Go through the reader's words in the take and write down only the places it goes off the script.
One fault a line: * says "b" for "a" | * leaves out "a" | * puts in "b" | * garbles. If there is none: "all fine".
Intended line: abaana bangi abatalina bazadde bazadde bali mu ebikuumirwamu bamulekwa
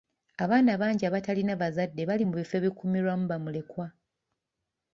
* leaves out "bazadde"
* puts in "bifo"